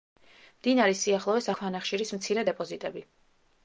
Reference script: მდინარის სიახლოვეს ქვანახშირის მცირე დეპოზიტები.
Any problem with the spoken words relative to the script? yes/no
no